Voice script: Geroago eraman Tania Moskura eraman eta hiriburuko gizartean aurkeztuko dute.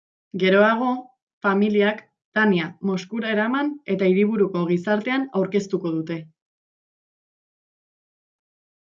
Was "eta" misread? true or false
false